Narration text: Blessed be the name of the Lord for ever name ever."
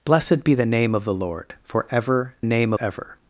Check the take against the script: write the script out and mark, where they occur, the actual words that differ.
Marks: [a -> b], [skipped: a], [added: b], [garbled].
Blessed be the name of the Lord for ever name ever."